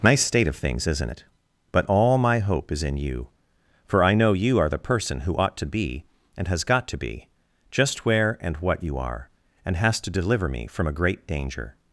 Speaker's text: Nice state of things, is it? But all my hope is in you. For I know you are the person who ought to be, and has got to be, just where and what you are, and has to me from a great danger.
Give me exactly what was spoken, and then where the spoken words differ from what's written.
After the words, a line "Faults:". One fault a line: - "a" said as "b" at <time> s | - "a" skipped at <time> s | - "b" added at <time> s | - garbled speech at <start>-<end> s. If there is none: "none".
Nice state of things, isn't it? But all my hope is in you. For I know you are the person who ought to be, and has got to be, just where and what you are, and has to deliver me from a great danger.
Faults:
- "is" said as "isn't" at 0.9 s
- "deliver" added at 10.1 s